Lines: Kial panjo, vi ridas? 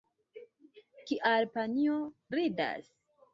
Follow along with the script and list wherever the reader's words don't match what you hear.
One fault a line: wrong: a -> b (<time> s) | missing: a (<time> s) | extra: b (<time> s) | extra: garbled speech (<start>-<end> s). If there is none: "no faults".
missing: vi (2.0 s)